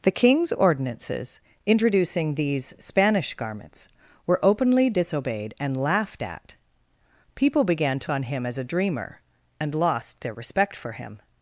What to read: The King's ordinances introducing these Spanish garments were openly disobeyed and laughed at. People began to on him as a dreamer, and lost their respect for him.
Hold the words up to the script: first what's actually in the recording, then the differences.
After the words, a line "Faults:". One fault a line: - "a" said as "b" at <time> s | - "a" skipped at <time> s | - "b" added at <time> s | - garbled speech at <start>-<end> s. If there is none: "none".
The King's ordinances introducing these Spanish garments were openly disobeyed and laughed at. People began to on him as a dreamer, and lost their respect for him.
Faults:
none